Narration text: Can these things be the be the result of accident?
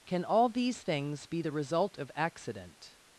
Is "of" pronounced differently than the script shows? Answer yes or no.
no